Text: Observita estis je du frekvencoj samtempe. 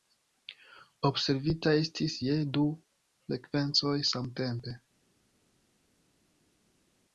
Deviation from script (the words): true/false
false